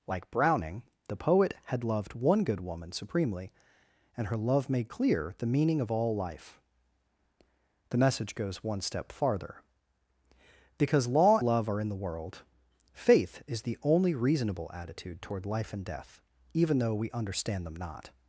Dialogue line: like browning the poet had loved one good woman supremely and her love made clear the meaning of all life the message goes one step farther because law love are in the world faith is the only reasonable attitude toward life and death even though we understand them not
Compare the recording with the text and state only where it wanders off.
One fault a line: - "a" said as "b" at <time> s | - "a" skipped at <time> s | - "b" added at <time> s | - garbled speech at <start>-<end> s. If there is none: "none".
none